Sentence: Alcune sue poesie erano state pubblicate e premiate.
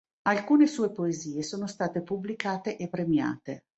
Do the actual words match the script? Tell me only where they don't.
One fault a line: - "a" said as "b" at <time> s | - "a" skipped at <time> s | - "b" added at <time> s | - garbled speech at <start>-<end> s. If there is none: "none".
- "erano" said as "sono" at 1.4 s